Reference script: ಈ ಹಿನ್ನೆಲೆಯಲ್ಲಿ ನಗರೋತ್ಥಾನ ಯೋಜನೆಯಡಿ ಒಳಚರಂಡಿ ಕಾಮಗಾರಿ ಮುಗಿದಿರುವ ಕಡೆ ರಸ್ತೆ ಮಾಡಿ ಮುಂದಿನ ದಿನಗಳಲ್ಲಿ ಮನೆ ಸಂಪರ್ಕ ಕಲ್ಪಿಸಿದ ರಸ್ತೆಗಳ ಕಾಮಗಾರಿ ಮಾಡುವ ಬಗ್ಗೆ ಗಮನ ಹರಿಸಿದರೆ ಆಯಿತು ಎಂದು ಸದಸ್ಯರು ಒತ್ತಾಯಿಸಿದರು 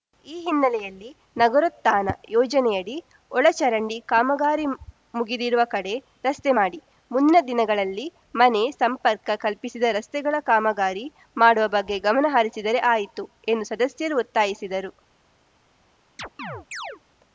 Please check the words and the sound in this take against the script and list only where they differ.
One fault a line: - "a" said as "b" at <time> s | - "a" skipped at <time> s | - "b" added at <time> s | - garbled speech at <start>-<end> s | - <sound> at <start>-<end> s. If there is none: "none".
- chirp at 16.2-17.0 s